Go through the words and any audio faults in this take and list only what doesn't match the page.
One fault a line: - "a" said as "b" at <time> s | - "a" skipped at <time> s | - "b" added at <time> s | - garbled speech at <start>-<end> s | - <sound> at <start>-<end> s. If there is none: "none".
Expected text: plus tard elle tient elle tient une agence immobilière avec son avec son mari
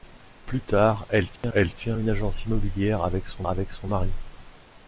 - dropout at 1.4-1.4 s